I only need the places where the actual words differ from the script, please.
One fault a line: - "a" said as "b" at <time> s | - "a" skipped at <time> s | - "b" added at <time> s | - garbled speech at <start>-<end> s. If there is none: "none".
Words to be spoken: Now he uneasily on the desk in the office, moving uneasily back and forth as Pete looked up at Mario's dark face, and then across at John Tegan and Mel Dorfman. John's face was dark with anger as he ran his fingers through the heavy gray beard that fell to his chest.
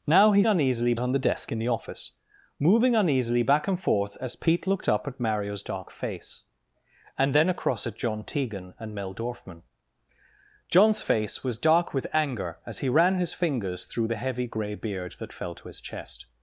none